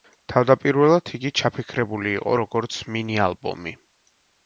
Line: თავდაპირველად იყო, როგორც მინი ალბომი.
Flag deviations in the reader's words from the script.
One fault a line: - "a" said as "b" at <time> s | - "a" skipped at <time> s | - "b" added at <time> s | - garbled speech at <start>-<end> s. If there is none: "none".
- "იგი ჩაფიქრებული" added at 1.2 s